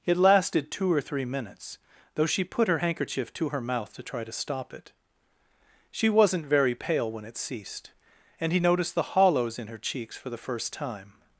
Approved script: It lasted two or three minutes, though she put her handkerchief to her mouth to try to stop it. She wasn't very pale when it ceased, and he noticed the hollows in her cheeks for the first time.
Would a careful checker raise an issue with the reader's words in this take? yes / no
no